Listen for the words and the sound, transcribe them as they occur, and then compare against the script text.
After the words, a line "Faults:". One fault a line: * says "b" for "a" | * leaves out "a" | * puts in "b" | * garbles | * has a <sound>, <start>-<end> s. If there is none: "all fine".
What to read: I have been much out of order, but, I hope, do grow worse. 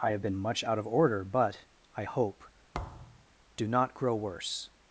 I have been much out of order, but, I hope, do not grow worse.
Faults:
* has a thud, 2.7-3.2 s
* puts in "not"